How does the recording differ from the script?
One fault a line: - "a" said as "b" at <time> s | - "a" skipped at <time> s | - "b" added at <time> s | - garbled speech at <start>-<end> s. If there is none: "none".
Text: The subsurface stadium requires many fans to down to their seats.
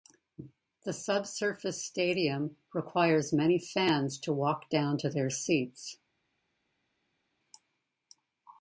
- "walk" added at 4.3 s